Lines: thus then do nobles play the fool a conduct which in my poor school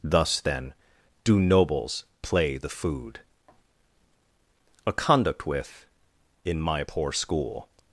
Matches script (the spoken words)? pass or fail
fail